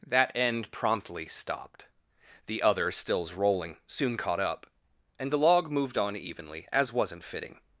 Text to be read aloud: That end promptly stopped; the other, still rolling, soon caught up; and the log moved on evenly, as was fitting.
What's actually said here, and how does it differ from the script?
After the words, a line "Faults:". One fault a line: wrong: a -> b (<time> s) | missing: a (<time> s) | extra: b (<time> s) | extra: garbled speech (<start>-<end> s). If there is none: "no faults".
That end promptly stopped; the other, stills rolling, soon caught up; and the log moved on evenly, as wasn't fitting.
Faults:
wrong: still -> stills (2.9 s)
wrong: was -> wasn't (6.9 s)